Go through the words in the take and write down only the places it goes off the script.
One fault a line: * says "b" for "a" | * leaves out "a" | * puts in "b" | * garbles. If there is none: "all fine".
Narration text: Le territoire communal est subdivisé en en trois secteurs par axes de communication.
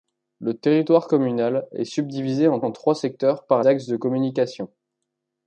all fine